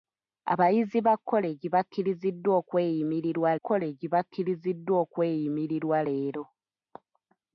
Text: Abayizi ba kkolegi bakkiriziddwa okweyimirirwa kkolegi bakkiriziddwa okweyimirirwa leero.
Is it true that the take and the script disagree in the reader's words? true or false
false